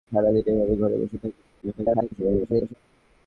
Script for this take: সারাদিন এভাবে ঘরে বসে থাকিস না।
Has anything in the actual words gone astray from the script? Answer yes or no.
yes